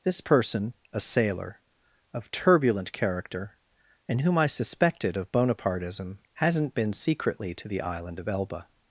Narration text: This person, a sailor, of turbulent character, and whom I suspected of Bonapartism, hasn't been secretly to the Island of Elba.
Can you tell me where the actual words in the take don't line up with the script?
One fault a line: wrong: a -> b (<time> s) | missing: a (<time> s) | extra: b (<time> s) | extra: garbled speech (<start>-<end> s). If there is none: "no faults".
no faults